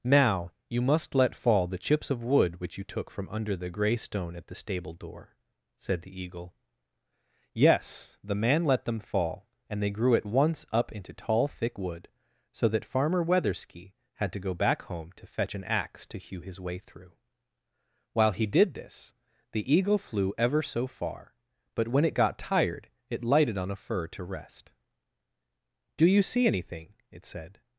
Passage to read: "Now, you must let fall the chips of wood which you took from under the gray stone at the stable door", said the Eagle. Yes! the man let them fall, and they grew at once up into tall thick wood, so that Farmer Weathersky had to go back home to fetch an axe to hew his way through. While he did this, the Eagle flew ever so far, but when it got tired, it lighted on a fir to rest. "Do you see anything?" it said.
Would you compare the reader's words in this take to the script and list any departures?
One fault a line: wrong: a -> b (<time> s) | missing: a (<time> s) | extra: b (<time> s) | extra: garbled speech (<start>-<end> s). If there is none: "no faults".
no faults